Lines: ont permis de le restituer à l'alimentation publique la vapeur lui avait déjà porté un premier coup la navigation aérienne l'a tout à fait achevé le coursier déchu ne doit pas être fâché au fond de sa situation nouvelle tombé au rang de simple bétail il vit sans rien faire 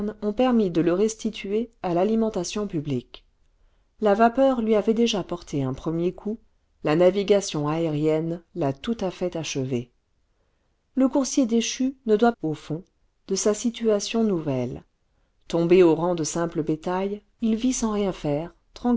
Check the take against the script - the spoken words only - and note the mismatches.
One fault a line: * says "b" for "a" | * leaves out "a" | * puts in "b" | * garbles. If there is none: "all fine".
* leaves out "pas être fâché"